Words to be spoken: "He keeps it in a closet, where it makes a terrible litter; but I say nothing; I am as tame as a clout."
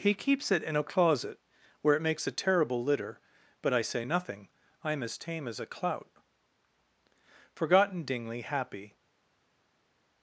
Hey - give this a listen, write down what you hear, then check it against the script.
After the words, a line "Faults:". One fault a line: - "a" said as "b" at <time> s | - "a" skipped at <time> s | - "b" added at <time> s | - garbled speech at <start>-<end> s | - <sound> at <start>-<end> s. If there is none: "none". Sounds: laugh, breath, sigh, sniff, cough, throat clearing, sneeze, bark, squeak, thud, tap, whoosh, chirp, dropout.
"He keeps it in a closet, where it makes a terrible litter; but I say nothing; I am as tame as a clout." Forgotten Dingley, happy
Faults:
- "Forgotten Dingley happy" added at 7.5 s